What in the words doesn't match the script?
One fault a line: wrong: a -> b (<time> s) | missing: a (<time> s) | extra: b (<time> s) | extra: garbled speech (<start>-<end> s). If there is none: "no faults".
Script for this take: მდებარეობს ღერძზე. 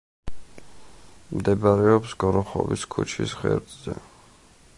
extra: გოროხოვის ქუჩის (2.2 s)